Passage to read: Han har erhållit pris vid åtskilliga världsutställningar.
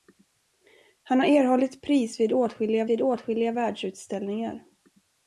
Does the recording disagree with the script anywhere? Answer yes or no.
yes